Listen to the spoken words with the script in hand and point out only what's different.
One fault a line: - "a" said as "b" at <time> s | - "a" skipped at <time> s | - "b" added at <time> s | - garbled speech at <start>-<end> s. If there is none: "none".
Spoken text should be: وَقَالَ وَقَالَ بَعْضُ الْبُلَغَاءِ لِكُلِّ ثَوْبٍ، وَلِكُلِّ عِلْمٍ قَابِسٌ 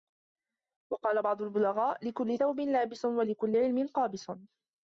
- "وَقَالَ" skipped at 1.2 s
- "لَابِسٌ" added at 2.6 s